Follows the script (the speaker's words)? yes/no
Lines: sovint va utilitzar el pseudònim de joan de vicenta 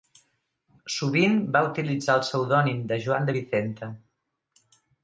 yes